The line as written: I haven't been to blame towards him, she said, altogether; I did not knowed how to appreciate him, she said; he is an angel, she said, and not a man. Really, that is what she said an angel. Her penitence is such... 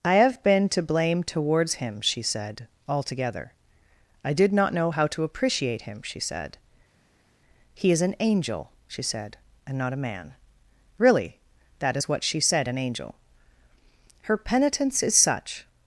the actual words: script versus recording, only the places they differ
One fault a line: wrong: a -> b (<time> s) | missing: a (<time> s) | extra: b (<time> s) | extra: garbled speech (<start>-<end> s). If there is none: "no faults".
wrong: haven't -> have (0.1 s)
wrong: knowed -> know (4.7 s)